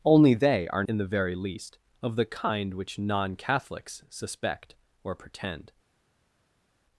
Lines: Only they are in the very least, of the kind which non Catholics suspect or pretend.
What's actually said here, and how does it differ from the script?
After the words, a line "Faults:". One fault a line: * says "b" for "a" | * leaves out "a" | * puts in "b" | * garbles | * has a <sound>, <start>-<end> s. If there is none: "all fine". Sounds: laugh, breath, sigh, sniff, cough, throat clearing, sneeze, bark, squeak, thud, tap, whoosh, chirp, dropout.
Only they are in the very least, of the kind which non Catholics suspect or pretend.
Faults:
all fine